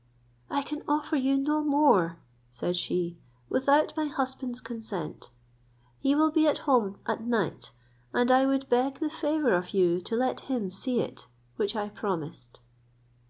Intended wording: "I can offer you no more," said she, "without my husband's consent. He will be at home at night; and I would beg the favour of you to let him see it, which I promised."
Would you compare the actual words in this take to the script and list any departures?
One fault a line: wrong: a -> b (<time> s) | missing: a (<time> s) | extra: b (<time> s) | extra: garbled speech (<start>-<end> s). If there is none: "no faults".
no faults